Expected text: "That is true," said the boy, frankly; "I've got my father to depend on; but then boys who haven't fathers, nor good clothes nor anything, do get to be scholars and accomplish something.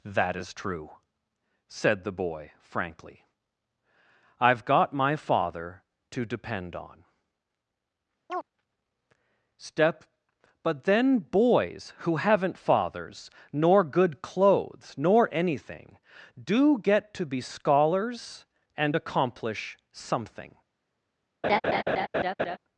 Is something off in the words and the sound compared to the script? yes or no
yes